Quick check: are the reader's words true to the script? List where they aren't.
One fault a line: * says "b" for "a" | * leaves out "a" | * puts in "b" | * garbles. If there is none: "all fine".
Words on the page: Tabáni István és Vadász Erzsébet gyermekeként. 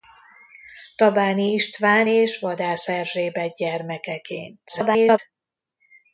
* garbles